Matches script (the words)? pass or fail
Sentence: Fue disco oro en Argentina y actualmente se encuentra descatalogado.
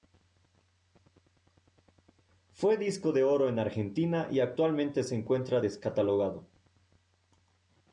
fail